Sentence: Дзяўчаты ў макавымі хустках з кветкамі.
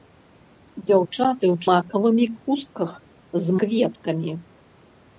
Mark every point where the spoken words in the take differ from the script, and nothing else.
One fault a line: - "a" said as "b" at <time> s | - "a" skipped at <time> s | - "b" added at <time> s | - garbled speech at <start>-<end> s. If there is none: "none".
none